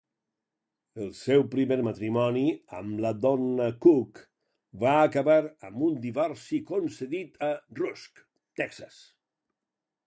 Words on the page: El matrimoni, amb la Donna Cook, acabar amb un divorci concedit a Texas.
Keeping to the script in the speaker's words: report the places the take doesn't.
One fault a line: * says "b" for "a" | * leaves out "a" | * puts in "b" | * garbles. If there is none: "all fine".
* puts in "seu primer"
* puts in "va"
* puts in "Rusk"